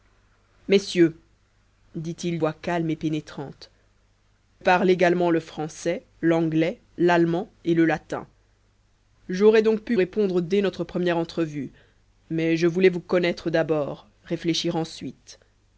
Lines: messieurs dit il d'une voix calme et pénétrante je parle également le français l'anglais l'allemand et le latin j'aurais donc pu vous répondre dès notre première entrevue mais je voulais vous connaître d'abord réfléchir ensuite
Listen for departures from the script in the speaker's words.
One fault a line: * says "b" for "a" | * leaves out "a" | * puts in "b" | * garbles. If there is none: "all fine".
* leaves out "d'une"
* leaves out "je"
* leaves out "vous"